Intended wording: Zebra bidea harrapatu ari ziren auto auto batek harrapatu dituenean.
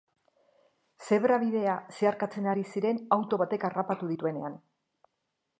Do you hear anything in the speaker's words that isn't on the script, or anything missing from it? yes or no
yes